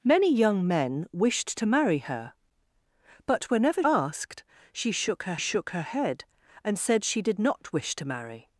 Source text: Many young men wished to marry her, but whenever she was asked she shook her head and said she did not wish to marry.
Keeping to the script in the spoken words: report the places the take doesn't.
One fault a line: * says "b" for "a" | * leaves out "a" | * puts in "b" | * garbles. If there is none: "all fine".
* puts in "asked"
* says "shook her" for "was asked she"